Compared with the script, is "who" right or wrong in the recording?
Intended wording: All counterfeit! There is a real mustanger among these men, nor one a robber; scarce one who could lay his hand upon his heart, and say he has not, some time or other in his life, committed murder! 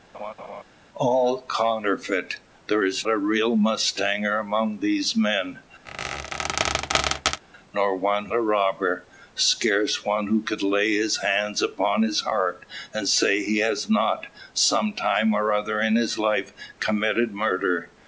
right